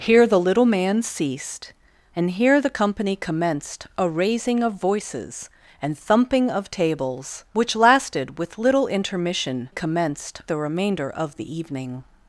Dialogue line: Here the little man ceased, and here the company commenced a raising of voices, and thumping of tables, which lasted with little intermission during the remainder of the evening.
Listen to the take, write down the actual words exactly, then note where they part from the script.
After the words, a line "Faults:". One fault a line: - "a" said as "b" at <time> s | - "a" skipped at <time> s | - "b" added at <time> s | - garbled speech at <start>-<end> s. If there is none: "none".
Here the little man ceased, and here the company commenced a raising of voices, and thumping of tables, which lasted with little intermission commenced the remainder of the evening.
Faults:
- "during" said as "commenced" at 9.7 s